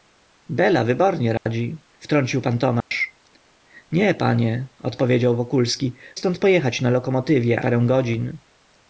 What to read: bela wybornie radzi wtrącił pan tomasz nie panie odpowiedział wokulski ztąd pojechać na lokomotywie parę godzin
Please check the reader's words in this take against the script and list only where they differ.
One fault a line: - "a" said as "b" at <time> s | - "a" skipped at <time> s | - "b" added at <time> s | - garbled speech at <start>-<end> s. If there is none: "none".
none